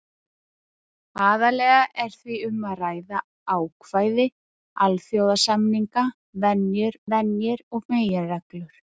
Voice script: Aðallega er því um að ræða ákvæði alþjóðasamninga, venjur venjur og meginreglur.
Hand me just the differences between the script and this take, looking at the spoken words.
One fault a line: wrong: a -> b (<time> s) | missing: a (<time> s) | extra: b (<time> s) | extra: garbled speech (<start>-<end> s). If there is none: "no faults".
no faults